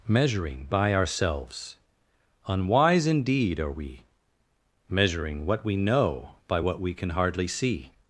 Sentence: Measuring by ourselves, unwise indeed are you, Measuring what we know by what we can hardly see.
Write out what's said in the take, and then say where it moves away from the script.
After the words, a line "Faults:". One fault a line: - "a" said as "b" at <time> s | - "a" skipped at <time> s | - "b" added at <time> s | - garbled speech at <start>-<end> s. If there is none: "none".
Measuring by ourselves, unwise indeed are we, Measuring what we know by what we can hardly see.
Faults:
- "you" said as "we" at 3.7 s